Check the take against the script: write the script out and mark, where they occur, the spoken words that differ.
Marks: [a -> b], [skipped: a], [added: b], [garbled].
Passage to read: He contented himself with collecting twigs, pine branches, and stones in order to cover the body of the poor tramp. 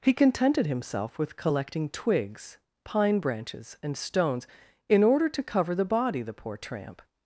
He contented himself with collecting twigs, pine branches, and stones in order to cover the body [skipped: of] the poor tramp.